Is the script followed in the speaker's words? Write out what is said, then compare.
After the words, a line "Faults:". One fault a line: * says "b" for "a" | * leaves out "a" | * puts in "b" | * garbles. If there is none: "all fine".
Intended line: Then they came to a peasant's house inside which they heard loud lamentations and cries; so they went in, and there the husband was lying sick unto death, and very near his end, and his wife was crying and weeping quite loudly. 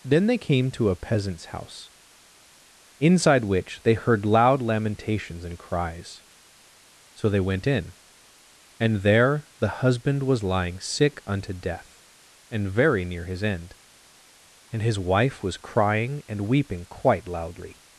Then they came to a peasant's house inside which they heard loud lamentations and cries; so they went in, and there the husband was lying sick unto death, and very near his end, and his wife was crying and weeping quite loudly.
Faults:
all fine